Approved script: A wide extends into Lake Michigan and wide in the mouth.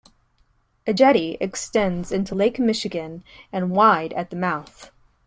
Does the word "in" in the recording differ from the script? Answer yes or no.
yes